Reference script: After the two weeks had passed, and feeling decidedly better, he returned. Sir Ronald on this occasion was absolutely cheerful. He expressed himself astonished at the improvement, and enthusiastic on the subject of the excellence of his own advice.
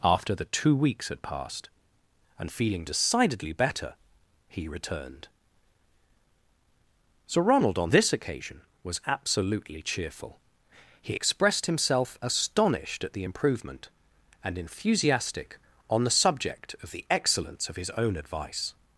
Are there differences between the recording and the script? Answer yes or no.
no